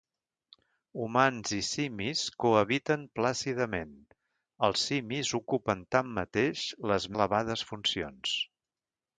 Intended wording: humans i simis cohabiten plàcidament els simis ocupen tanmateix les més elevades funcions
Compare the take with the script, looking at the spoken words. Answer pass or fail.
fail